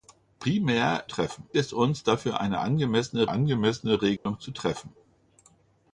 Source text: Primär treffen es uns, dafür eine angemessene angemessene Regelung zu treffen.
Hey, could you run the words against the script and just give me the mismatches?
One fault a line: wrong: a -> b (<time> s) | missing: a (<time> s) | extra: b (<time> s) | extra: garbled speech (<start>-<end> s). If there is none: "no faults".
no faults